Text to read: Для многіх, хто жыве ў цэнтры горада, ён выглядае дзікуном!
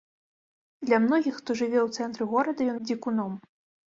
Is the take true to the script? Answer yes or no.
no